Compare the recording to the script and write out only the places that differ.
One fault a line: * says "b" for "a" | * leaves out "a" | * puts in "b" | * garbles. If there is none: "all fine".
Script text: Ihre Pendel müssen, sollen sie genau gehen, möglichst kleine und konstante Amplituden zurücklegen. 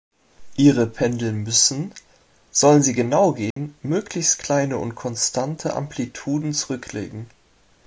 all fine